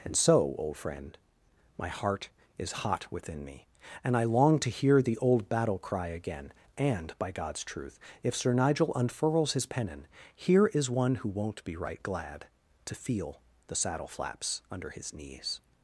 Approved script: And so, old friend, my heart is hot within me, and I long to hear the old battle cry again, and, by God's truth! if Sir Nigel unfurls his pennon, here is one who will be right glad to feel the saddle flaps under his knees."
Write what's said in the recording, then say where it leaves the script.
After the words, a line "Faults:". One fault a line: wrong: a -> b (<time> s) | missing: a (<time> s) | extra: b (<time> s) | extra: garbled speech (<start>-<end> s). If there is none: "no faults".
And so, old friend, my heart is hot within me, and I long to hear the old battle cry again, and, by God's truth! if Sir Nigel unfurls his pennon, here is one who won't be right glad to feel the saddle flaps under his knees."
Faults:
wrong: will -> won't (11.3 s)